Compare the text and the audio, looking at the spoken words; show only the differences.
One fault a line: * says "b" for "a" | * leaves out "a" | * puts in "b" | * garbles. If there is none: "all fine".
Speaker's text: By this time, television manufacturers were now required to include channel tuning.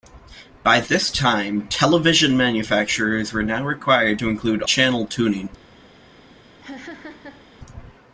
all fine